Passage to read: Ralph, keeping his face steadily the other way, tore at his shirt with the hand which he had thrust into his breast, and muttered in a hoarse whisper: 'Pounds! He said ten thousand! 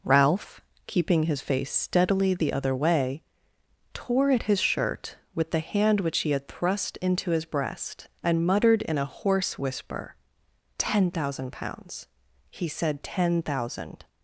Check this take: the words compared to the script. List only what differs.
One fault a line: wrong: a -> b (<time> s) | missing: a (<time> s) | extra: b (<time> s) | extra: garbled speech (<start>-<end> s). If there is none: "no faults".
extra: Ten thousand (10.8 s)